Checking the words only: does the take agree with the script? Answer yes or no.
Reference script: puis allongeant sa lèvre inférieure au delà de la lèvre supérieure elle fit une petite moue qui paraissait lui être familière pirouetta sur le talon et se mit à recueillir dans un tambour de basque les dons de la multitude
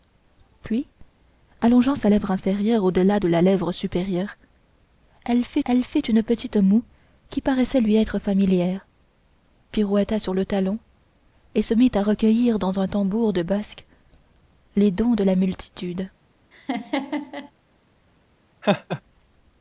no